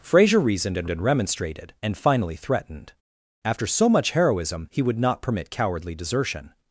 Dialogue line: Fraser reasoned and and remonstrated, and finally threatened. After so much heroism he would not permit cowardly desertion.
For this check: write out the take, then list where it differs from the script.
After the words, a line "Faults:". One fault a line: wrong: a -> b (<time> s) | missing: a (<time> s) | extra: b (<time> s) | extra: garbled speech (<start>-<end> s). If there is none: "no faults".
Fraser reasoned and and remonstrated, and finally threatened. After so much heroism he would not permit cowardly desertion.
Faults:
no faults